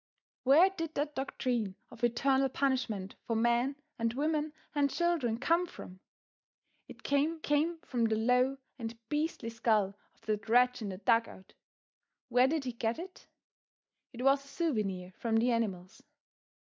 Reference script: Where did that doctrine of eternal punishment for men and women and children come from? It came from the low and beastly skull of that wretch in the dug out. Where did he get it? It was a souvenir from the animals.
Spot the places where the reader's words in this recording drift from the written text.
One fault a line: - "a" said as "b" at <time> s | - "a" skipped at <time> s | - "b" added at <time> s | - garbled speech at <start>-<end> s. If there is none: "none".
- "came" added at 7.4 s